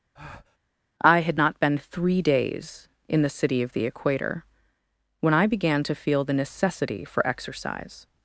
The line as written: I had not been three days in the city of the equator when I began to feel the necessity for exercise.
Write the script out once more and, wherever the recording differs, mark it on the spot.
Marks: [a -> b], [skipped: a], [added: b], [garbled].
I had not been three days in the city of the equator when I began to feel the necessity for exercise.